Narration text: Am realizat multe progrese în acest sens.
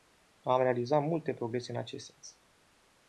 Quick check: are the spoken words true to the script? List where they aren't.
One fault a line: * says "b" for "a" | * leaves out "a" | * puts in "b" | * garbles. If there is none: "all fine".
all fine